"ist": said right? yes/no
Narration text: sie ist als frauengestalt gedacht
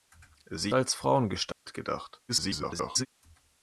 no